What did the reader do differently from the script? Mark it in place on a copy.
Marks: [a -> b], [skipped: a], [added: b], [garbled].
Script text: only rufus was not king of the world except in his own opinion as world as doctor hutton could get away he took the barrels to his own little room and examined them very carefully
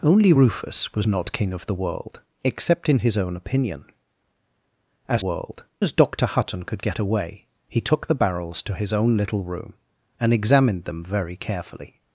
only rufus was not king of the world except in his own opinion as world as doctor hutton could get away he took the barrels to his own little room and examined them very carefully